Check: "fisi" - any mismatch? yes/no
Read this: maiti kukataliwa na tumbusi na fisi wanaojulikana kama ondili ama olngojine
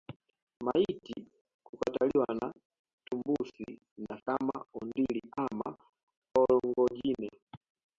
yes